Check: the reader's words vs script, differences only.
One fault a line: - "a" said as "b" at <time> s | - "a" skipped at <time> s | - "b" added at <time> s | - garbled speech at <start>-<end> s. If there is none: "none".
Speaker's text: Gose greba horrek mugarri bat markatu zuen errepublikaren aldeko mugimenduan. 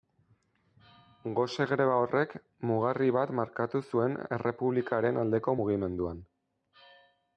none